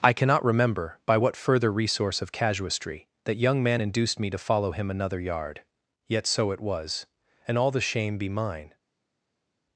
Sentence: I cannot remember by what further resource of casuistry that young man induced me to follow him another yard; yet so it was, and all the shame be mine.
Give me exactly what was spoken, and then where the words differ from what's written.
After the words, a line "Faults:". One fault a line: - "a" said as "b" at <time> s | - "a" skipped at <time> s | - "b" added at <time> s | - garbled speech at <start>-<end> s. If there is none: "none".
I cannot remember by what further resource of casuistry that young man induced me to follow him another yard; yet so it was, and all the shame be mine.
Faults:
none